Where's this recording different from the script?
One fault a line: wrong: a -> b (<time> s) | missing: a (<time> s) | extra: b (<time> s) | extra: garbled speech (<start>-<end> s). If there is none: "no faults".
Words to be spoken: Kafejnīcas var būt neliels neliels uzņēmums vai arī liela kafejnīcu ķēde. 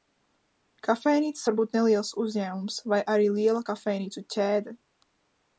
missing: neliels (2.1 s)